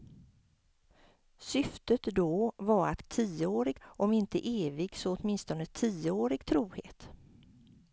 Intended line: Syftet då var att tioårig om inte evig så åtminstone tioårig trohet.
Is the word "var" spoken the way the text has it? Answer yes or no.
yes